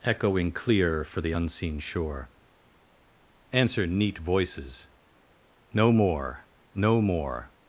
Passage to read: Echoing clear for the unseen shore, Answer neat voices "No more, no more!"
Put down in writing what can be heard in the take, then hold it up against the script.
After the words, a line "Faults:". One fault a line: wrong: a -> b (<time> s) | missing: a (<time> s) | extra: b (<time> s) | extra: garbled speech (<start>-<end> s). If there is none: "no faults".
Echoing clear for the unseen shore, Answer neat voices "No more, no more!"
Faults:
no faults